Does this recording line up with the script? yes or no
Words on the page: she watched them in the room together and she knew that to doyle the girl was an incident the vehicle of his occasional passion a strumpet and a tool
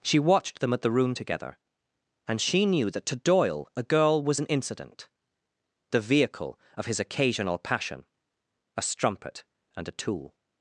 no